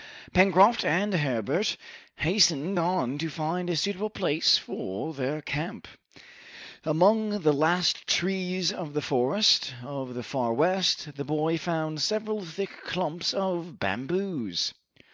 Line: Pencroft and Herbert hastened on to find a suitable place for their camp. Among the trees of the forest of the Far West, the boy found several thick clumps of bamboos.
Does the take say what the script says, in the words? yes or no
no